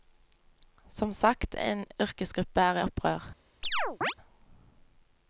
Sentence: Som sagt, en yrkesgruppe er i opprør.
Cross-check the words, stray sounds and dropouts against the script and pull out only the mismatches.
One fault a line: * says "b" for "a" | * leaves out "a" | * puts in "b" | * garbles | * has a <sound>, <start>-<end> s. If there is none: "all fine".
* has a chirp, 3.6-4.1 s